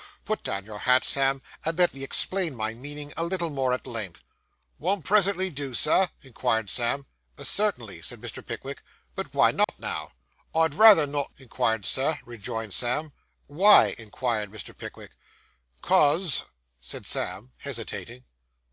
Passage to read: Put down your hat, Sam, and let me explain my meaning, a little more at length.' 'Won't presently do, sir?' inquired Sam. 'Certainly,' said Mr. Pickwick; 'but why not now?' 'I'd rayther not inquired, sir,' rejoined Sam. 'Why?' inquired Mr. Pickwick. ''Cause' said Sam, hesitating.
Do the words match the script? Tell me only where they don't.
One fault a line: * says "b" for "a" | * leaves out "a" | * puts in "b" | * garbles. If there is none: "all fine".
all fine